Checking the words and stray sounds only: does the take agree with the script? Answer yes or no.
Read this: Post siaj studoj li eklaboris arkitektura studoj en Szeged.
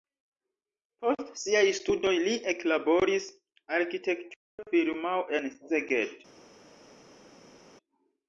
no